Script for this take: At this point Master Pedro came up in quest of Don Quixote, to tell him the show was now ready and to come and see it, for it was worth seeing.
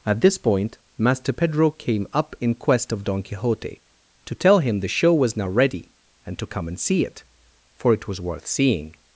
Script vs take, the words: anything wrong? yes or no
no